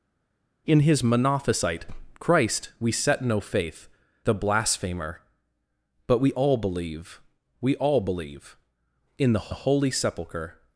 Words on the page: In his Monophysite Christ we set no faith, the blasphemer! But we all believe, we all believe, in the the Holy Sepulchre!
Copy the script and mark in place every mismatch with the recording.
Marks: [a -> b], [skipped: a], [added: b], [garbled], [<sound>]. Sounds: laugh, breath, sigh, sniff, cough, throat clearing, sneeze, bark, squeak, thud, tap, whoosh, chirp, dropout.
In his Monophysite Christ we set no faith, the blasphemer! But we all believe, we all believe, in the the Holy Sepulchre!